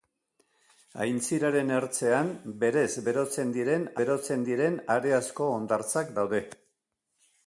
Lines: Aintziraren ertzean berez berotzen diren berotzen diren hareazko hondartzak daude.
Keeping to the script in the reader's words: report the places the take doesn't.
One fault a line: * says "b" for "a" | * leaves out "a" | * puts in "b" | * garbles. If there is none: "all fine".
all fine